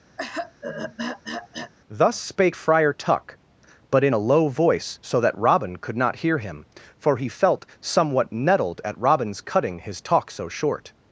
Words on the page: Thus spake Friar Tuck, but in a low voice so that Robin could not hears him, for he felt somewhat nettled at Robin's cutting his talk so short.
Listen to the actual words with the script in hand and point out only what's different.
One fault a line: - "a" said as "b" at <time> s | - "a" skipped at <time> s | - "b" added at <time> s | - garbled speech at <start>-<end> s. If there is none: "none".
- "hears" said as "hear" at 6.2 s